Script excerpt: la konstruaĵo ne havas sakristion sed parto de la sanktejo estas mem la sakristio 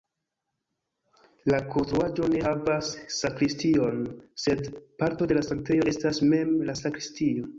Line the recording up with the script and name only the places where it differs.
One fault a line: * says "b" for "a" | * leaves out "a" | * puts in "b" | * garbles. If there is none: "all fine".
all fine